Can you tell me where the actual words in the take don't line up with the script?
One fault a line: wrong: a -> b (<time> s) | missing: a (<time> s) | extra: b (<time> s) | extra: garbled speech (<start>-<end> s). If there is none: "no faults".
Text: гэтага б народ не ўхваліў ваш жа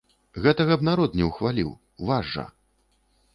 no faults